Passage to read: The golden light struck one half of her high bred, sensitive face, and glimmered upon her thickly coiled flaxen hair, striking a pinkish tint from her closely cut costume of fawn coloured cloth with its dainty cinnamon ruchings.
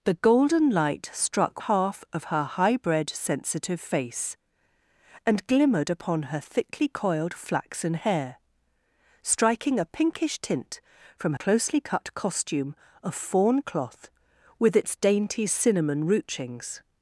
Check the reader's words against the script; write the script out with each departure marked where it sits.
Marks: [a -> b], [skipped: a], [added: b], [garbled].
The golden light struck [skipped: one] half of her high bred, sensitive face, and glimmered upon her thickly coiled flaxen hair, striking a pinkish tint from [skipped: her] closely cut costume of fawn [skipped: coloured] cloth with its dainty cinnamon ruchings.